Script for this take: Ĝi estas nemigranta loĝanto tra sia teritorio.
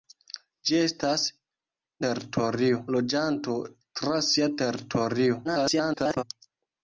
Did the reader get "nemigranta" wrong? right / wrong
wrong